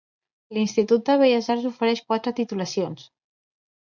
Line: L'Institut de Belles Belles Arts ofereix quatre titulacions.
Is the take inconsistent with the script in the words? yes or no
yes